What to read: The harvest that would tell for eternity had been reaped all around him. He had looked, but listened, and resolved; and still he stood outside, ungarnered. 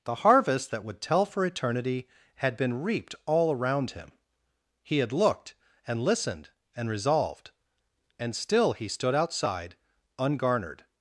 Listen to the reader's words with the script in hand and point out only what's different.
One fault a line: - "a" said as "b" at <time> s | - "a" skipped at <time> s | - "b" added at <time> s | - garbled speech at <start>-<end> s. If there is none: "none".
- "but" said as "and" at 5.9 s